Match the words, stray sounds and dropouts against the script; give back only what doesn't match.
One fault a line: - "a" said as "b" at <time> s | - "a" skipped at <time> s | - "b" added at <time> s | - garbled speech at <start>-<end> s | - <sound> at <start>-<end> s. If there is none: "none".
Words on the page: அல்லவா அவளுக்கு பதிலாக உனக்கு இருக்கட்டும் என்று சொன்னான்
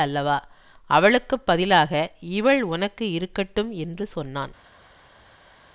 - "இவள்" added at 2.2 s